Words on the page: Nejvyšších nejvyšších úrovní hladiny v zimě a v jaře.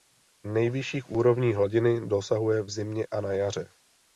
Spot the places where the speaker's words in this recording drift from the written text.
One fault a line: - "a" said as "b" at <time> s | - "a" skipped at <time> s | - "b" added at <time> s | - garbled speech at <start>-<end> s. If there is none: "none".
- "nejvyšších" skipped at 1.1 s
- "dosahuje" added at 2.1 s
- "v" said as "na" at 3.2 s